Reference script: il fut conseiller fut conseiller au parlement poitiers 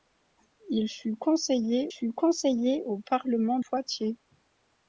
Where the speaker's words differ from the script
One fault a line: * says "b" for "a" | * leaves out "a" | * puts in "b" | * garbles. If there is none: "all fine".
all fine